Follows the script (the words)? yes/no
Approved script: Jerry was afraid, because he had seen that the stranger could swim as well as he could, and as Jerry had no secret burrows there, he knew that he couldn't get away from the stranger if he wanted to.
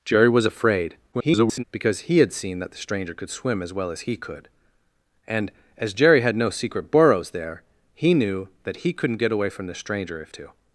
no